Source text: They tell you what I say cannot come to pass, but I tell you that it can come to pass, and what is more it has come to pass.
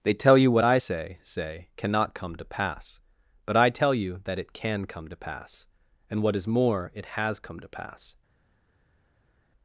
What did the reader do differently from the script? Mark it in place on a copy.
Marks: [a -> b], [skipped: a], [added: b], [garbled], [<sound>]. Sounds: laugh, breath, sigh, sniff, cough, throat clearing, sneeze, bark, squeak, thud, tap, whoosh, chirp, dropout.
They tell you what I say [added: say] cannot come to pass, but I tell you that it can come to pass, and what is more it has come to pass.